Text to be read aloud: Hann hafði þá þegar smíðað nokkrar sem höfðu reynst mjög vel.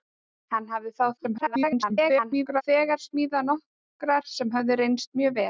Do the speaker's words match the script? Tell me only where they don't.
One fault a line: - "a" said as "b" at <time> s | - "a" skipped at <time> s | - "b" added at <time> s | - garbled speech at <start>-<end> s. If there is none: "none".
- garbled speech at 1.2-2.6 s